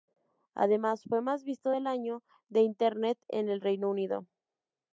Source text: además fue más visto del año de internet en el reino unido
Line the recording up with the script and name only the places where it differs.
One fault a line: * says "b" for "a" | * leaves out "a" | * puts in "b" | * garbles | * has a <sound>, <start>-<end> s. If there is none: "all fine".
all fine